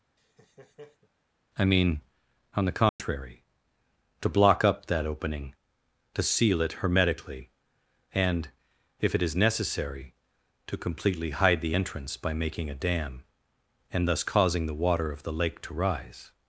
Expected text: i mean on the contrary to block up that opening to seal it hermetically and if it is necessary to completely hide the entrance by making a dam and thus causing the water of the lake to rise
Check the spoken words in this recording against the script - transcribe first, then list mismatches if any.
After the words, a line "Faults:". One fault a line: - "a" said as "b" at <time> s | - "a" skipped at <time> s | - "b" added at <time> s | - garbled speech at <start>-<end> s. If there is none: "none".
i mean on the contrary to block up that opening to seal it hermetically and if it is necessary to completely hide the entrance by making a dam and thus causing the water of the lake to rise
Faults:
none